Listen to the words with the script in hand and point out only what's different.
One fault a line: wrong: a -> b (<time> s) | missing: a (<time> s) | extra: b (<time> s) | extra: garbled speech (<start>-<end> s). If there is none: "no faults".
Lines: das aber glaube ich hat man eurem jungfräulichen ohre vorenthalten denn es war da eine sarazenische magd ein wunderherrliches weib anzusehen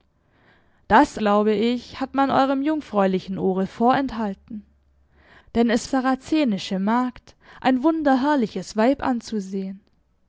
missing: aber (1.2 s)
missing: war da eine (5.9 s)